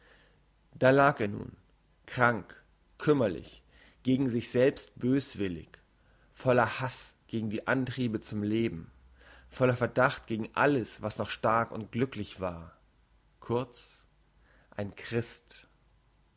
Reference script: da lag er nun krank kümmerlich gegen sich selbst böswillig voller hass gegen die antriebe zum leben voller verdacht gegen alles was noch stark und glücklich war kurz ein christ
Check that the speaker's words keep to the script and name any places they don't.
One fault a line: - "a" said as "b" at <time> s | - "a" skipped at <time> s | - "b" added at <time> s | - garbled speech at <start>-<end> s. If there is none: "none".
none